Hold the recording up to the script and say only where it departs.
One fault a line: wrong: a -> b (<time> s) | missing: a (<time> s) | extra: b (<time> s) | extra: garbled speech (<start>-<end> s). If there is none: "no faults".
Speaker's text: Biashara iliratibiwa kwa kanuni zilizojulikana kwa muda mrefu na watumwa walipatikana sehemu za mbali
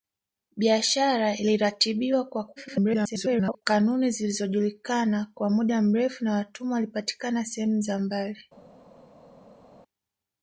extra: garbled speech (2.6-3.6 s)